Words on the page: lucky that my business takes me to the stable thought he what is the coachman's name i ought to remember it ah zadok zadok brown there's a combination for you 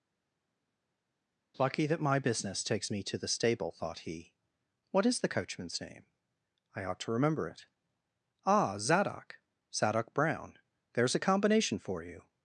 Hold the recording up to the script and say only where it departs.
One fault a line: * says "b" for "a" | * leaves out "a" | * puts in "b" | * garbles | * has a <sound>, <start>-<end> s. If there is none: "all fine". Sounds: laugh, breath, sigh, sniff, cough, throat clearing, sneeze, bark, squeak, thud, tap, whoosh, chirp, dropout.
all fine